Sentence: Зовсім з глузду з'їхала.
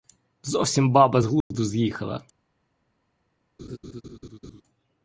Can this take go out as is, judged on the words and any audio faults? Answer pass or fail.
fail